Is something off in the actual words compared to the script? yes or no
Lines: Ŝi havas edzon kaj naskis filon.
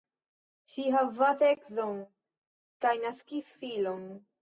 no